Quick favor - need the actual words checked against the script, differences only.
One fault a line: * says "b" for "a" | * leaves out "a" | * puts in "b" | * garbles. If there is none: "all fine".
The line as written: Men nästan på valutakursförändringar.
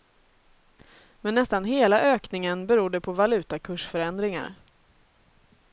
* puts in "hela ökningen berodde"